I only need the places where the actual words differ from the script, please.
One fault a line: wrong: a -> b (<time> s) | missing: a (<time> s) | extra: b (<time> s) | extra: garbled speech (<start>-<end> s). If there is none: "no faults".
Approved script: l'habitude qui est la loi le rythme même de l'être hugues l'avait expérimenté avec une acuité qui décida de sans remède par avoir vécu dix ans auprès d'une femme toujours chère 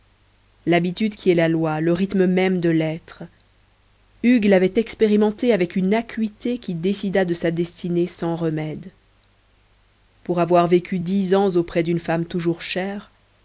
extra: sa destinée (7.3 s)
wrong: par -> pour (10.2 s)